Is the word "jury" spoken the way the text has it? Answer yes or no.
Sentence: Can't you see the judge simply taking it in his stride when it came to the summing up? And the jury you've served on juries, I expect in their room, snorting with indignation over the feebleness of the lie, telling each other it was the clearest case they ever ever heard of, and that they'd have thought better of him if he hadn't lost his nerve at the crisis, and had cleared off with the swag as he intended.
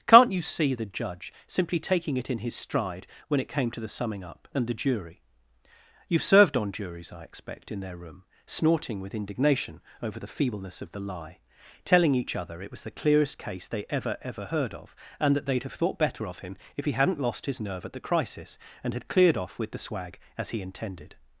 yes